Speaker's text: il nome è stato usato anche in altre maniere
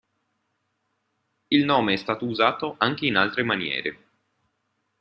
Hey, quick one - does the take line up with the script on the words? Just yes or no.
yes